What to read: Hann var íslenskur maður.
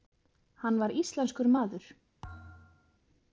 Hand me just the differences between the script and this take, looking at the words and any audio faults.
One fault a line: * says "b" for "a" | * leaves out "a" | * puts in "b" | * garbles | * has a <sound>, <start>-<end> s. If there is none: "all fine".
* has a thud, 2.2-3.0 s